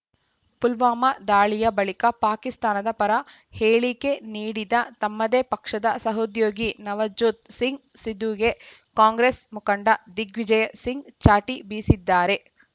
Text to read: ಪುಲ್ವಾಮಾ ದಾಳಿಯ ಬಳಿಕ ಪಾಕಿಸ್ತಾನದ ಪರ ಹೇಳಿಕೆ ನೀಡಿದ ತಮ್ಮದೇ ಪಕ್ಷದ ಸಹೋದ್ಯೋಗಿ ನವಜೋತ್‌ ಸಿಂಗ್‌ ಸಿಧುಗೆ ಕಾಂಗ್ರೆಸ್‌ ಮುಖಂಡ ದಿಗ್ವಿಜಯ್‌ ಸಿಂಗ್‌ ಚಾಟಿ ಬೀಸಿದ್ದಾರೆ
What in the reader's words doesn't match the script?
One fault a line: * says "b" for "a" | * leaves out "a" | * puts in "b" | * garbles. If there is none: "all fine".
all fine